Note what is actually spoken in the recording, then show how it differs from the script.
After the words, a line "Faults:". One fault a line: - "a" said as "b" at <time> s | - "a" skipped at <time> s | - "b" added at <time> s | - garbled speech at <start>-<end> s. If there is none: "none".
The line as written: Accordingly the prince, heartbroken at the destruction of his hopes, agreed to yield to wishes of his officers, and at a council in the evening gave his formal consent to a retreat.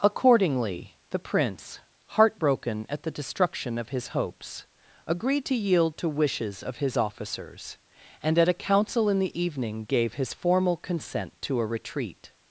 Accordingly the prince, heartbroken at the destruction of his hopes, agreed to yield to wishes of his officers, and at a council in the evening gave his formal consent to a retreat.
Faults:
none